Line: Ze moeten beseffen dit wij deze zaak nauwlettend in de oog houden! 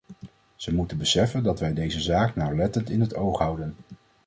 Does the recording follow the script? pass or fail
fail